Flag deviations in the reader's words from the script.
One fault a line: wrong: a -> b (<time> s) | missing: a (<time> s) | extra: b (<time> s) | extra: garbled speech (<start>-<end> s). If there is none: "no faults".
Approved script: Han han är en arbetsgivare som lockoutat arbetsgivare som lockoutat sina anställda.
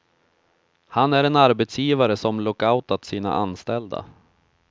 missing: han (1.1 s)
missing: arbetsgivare som lockoutat (3.1 s)